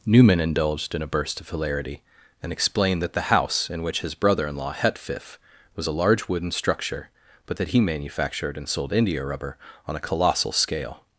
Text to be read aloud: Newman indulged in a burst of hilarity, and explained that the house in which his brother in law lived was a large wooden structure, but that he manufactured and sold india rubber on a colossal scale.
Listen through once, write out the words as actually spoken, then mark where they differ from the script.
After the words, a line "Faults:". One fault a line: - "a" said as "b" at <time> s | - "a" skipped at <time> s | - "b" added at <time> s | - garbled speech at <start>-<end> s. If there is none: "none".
Newman indulged in a burst of hilarity, and explained that the house in which his brother in law hetfif was a large wooden structure, but that he manufactured and sold india rubber on a colossal scale.
Faults:
- "lived" said as "hetfif" at 4.7 s